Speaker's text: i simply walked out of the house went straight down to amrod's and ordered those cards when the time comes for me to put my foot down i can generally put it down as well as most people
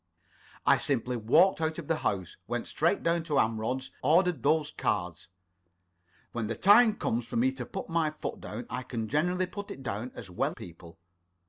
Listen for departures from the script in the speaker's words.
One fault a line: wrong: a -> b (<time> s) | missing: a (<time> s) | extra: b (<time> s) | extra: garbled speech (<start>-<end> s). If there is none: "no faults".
missing: and (3.9 s)
missing: as most (10.6 s)